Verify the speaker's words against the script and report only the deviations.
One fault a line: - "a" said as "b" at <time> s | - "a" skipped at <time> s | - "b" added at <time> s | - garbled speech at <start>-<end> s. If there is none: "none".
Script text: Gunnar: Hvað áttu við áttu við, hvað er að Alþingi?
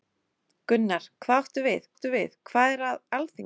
none